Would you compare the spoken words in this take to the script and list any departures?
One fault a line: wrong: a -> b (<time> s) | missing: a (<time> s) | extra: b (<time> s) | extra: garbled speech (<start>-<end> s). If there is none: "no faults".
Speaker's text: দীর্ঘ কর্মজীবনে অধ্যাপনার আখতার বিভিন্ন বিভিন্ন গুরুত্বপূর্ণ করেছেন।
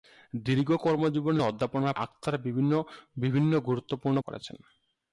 no faults